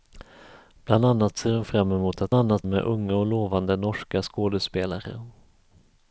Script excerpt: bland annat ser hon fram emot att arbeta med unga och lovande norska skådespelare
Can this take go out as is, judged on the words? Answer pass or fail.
fail